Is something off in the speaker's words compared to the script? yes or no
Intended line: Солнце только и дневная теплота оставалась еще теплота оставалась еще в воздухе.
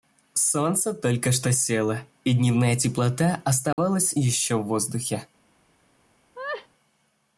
yes